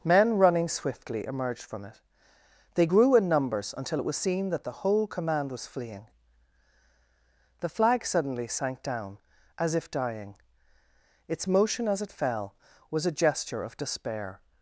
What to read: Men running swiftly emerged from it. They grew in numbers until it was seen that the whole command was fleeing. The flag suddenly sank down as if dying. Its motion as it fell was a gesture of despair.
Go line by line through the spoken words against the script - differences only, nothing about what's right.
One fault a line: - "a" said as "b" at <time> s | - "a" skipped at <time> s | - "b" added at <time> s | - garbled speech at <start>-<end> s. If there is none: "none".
none